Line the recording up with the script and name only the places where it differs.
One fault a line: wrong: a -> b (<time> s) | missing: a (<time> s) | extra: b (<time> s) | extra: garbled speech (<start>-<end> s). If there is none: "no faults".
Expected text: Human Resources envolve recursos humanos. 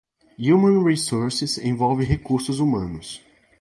no faults